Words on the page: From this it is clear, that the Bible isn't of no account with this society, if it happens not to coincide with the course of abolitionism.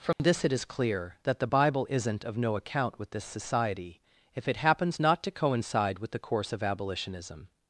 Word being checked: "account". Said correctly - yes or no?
yes